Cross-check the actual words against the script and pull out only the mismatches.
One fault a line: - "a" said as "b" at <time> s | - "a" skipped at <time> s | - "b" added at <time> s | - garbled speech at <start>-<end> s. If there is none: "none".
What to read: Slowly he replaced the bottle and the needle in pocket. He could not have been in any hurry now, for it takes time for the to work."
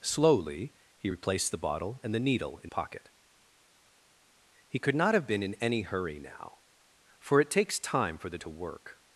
none